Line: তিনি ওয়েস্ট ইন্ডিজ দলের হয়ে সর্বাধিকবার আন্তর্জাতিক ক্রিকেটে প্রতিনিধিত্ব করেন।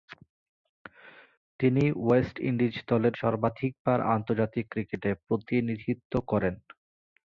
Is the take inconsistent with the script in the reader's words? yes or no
yes